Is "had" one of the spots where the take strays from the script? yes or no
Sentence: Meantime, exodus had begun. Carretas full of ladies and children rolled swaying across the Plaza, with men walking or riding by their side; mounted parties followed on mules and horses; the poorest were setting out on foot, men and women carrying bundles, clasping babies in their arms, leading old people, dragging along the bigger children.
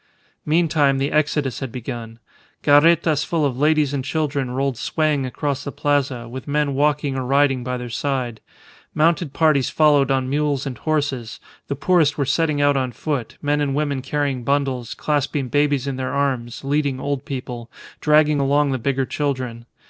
no